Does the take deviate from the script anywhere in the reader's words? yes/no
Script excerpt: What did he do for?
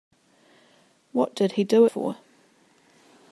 no